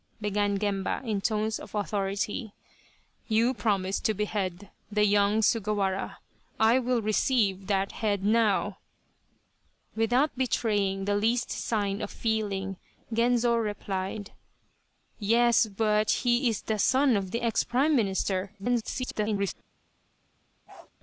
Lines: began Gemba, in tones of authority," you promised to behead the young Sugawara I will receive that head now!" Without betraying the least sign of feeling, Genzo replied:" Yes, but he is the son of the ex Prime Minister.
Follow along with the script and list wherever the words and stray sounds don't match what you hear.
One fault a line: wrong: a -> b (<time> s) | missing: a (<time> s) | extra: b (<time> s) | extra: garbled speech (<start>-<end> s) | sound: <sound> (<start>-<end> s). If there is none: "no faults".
extra: garbled speech (18.6-19.5 s)
sound: bark (20.7-20.9 s)